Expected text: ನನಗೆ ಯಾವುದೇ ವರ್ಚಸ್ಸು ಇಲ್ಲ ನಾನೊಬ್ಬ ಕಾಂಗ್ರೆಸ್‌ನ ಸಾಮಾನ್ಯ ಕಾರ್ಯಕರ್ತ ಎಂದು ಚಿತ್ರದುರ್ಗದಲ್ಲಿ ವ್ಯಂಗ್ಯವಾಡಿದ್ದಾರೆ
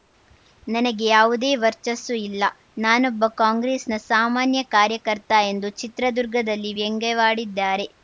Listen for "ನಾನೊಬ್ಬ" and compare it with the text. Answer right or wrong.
right